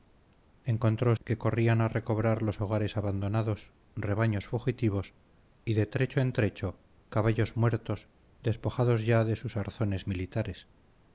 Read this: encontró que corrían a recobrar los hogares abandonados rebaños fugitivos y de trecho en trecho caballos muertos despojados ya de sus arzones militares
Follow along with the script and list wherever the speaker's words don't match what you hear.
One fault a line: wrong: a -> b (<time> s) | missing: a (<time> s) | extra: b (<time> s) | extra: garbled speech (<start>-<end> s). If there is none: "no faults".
no faults